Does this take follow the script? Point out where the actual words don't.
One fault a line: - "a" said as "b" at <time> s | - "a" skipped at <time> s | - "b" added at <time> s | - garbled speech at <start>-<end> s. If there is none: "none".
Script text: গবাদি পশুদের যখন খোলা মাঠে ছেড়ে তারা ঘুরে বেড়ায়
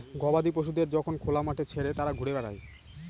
none